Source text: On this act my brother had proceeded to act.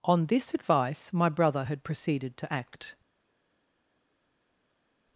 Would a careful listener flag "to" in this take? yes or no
no